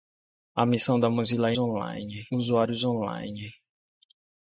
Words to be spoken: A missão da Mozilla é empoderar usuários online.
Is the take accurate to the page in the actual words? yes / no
no